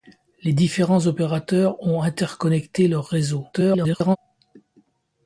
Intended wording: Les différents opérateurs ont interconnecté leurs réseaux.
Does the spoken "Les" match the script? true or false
true